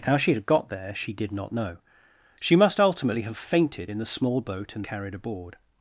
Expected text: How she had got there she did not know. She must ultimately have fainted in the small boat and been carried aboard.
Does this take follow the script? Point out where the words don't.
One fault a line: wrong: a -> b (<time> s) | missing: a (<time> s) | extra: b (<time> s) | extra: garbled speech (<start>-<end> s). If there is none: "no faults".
missing: been (4.8 s)